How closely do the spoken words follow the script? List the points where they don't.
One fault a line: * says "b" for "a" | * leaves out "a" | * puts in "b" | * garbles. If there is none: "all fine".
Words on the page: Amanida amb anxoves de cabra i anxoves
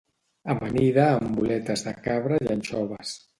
* says "boletes" for "anxoves"